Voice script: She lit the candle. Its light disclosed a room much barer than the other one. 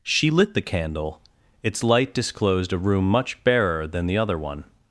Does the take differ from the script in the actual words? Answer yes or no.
no